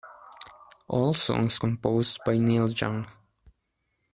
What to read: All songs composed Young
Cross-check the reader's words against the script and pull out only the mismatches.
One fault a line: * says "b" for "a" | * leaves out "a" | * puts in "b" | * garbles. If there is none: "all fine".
* puts in "by Neil"